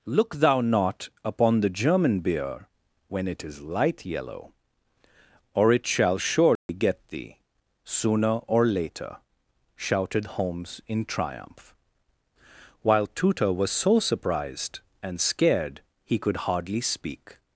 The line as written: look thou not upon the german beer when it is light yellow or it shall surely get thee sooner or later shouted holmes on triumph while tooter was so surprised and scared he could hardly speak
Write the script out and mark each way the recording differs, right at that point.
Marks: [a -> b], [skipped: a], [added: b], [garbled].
look thou not upon the german beer when it is light yellow or it shall surely get thee sooner or later shouted holmes [on -> in] triumph while tooter was so surprised and scared he could hardly speak